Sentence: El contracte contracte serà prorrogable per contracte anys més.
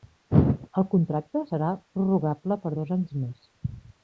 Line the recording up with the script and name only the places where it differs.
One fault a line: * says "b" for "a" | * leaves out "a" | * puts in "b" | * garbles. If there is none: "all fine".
* leaves out "contracte"
* says "dos" for "contracte"